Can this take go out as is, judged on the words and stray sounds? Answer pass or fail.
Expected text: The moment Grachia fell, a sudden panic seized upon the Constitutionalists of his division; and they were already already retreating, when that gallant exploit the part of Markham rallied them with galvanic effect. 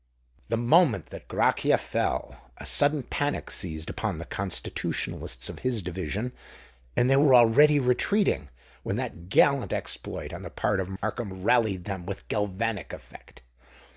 fail